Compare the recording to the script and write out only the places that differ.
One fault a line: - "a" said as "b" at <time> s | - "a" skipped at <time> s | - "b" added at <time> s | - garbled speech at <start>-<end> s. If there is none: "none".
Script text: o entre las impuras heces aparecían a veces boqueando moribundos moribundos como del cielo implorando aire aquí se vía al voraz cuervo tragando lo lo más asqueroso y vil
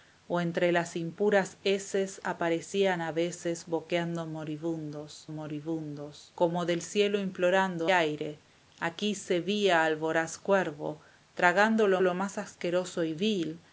none